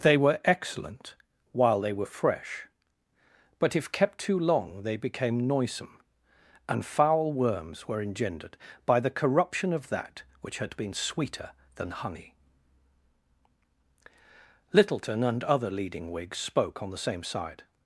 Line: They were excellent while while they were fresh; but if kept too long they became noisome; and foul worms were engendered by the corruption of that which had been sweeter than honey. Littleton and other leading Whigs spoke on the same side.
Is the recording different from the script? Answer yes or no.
yes